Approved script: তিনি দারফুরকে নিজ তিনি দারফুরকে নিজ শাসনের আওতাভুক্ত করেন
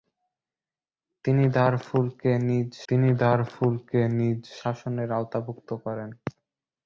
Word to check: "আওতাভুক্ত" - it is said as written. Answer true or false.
true